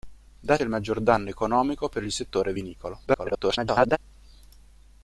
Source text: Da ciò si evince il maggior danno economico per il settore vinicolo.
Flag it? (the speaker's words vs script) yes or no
yes